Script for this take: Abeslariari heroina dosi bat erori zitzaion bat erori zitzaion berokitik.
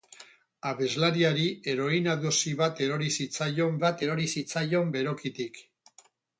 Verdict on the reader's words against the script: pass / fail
pass